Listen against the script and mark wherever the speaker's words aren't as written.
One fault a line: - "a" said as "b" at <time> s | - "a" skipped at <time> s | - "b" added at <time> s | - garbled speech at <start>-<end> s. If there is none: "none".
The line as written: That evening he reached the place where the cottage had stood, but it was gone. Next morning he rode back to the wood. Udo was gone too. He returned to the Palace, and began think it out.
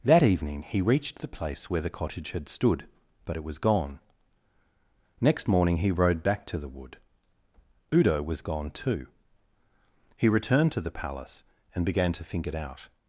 - "to" added at 12.1 s